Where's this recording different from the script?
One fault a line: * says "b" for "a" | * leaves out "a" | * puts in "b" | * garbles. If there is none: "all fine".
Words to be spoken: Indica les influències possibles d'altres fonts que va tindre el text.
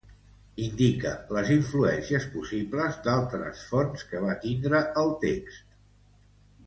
all fine